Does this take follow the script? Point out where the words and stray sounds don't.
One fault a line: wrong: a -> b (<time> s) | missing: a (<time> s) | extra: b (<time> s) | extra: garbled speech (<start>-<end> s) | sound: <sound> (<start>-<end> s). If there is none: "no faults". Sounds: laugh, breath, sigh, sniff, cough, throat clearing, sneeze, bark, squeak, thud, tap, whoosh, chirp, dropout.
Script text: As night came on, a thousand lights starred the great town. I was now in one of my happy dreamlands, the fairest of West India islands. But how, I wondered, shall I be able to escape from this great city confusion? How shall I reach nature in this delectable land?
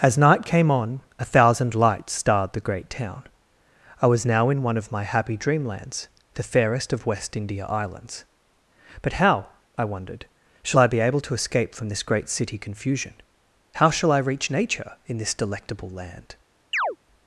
sound: chirp (16.7-17.0 s)